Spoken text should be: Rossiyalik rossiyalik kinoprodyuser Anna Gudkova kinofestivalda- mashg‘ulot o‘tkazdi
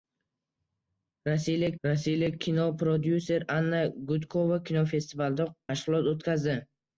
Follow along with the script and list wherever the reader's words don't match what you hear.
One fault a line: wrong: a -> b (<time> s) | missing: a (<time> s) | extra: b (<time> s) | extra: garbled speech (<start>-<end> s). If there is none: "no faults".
no faults